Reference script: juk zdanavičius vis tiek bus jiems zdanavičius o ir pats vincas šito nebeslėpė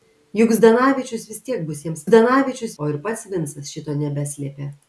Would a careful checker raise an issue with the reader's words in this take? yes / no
no